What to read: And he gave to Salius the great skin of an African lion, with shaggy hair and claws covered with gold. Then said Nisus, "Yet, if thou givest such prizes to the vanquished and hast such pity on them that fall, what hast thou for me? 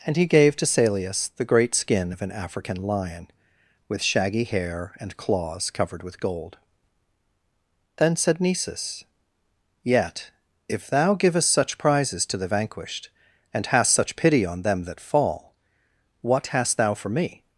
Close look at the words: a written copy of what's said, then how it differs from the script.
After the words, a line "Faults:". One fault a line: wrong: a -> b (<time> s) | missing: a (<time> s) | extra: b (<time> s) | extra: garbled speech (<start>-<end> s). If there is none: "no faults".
And he gave to Salius the great skin of an African lion, with shaggy hair and claws covered with gold. Then said Nisus, "Yet, if thou givest such prizes to the vanquished and hast such pity on them that fall, what hast thou for me?
Faults:
no faults